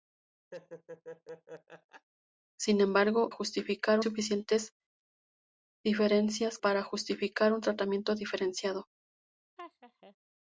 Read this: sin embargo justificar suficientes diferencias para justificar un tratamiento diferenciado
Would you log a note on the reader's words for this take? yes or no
no